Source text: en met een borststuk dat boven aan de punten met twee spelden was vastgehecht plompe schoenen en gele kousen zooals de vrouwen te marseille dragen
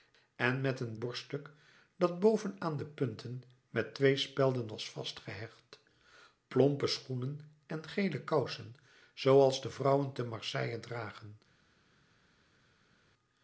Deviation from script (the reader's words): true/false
false